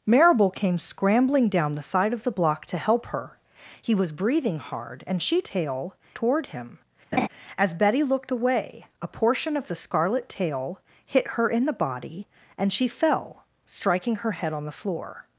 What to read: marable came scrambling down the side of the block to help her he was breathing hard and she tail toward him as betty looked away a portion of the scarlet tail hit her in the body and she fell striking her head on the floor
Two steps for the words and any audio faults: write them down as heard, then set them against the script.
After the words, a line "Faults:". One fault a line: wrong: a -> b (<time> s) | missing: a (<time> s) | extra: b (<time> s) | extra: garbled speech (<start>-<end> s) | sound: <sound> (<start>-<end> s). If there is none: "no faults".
marable came scrambling down the side of the block to help her he was breathing hard and she tail toward him as betty looked away a portion of the scarlet tail hit her in the body and she fell striking her head on the floor
Faults:
sound: laugh (7.1-7.3 s)